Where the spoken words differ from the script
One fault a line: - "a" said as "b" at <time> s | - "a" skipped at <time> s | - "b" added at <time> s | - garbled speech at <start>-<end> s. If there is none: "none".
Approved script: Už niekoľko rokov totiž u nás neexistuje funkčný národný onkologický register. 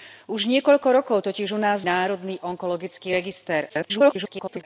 - "neexistuje funkčný" skipped at 1.9 s
- garbled speech at 3.7-4.6 s